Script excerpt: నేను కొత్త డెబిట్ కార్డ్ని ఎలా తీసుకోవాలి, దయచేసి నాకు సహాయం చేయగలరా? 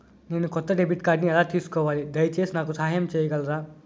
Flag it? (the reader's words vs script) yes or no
no